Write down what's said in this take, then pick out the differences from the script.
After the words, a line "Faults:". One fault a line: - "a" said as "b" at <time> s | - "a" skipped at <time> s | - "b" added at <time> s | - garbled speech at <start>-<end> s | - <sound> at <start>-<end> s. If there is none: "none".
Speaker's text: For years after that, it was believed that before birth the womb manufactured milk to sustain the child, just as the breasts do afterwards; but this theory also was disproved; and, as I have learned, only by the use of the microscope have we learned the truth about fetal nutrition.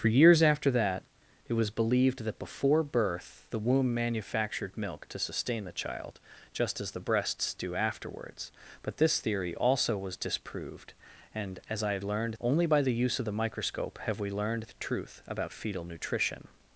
For years after that, it was believed that before birth the womb manufactured milk to sustain the child, just as the breasts do afterwards; but this theory also was disproved; and, as I have learned, only by the use of the microscope have we learned the truth about fetal nutrition.
Faults:
none